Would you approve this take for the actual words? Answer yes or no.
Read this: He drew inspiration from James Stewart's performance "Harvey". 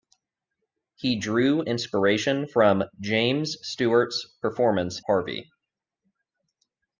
yes